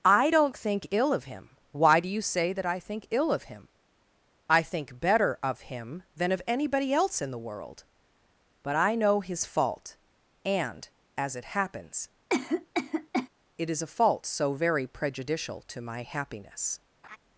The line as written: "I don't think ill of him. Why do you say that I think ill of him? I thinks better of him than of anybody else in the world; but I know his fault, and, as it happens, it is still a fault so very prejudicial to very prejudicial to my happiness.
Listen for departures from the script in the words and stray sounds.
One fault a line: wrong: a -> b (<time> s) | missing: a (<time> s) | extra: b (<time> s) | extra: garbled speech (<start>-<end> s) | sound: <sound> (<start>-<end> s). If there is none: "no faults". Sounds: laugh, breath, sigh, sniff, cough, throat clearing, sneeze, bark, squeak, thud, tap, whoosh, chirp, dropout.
wrong: thinks -> think (4.6 s)
sound: cough (12.3-13.3 s)
missing: still (13.8 s)
missing: very prejudicial to (15.8 s)
sound: laugh (17.0-17.2 s)